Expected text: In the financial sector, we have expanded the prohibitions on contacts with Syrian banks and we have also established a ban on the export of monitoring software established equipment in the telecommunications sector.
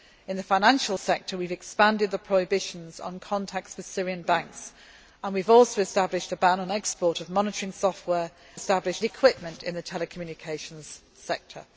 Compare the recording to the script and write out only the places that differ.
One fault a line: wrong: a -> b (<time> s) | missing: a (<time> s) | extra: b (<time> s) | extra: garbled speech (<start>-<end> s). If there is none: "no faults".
no faults